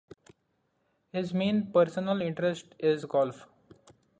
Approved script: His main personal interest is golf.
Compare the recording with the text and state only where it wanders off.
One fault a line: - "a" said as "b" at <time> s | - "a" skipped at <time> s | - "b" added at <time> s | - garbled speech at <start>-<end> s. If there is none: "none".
none